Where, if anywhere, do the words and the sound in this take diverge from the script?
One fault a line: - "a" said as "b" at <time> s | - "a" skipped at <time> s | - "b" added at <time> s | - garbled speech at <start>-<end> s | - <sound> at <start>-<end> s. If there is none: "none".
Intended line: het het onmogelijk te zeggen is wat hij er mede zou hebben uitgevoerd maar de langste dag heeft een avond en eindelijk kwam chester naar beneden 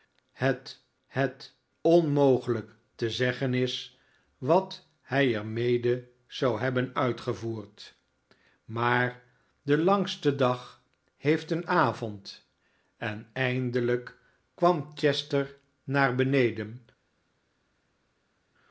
none